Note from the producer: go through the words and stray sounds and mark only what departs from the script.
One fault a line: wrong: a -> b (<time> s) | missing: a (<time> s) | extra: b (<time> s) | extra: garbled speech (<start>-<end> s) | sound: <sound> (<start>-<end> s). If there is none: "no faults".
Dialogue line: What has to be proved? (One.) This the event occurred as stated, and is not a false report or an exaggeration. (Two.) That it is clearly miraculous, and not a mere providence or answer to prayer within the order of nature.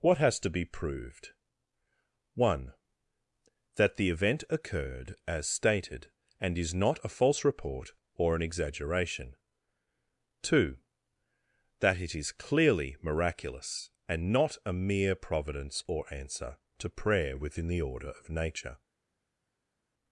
wrong: This -> That (3.8 s)